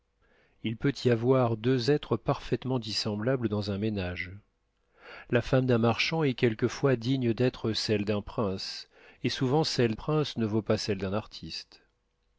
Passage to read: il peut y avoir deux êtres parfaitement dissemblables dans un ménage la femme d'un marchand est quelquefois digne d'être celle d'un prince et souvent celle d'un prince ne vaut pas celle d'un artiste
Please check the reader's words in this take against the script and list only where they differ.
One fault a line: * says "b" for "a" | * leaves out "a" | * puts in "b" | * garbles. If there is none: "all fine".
* leaves out "d'un"